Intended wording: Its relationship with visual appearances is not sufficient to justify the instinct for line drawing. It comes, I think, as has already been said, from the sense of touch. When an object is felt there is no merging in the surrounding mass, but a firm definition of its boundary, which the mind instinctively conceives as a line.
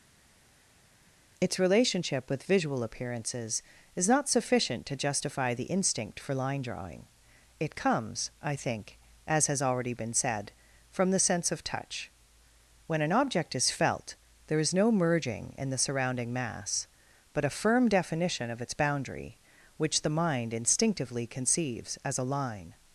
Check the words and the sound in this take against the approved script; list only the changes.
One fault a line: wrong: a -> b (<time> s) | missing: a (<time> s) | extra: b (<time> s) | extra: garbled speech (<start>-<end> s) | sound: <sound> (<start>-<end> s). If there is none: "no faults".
no faults